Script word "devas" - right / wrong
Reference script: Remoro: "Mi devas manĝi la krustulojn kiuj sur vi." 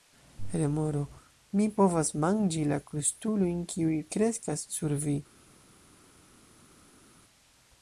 wrong